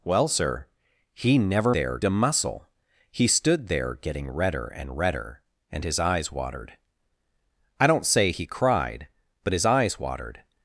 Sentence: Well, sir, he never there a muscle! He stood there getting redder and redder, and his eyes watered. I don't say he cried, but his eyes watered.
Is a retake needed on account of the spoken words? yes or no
no